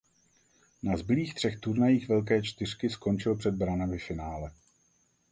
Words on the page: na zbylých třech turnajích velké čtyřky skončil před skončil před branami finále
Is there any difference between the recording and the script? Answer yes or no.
yes